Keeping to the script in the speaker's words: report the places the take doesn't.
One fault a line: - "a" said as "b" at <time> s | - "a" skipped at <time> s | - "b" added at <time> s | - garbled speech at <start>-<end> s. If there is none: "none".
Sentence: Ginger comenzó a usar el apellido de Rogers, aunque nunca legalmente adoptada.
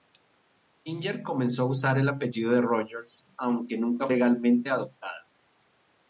none